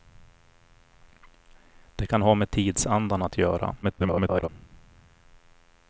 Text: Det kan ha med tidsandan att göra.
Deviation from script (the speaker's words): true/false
true